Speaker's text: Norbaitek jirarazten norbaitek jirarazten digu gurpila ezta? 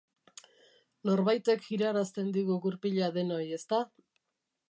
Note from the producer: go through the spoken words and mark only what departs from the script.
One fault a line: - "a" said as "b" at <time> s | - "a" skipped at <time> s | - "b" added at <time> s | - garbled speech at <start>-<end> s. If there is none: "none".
- "norbaitek jirarazten" skipped at 2.3 s
- "denoi" added at 3.2 s